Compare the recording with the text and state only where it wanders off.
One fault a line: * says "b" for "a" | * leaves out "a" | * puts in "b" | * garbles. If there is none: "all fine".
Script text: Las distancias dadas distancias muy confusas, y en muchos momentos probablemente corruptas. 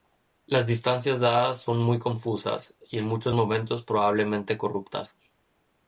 * says "son" for "distancias"